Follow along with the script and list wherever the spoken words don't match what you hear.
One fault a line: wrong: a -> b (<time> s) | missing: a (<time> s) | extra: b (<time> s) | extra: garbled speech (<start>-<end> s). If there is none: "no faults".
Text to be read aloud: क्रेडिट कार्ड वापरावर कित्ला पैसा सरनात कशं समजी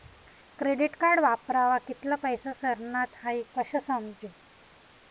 extra: हाई (3.2 s)